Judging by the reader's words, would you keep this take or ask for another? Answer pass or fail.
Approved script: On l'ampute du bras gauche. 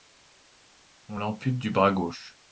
pass